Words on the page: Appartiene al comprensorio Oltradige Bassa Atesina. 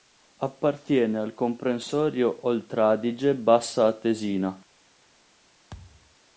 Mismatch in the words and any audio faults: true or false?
true